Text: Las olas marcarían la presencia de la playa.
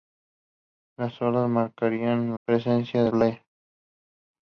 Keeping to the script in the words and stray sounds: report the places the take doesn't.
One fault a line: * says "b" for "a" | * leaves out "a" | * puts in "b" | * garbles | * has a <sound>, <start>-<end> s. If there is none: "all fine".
* leaves out "la"
* leaves out "la"